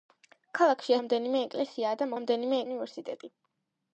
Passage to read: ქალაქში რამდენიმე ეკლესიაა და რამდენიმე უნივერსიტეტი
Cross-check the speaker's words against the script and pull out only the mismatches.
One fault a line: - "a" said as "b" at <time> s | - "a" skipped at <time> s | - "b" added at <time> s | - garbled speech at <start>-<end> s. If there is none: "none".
none